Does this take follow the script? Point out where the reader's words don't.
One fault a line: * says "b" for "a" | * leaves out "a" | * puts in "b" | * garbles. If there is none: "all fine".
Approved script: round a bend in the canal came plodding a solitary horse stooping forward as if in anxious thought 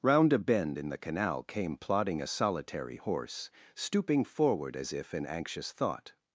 all fine